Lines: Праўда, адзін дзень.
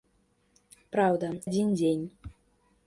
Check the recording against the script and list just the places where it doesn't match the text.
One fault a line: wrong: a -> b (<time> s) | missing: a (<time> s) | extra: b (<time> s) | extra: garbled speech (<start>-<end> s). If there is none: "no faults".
no faults